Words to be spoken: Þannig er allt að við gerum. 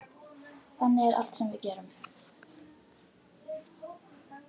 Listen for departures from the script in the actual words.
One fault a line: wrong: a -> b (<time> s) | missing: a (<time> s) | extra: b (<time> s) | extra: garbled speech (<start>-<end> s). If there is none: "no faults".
wrong: að -> sem (1.4 s)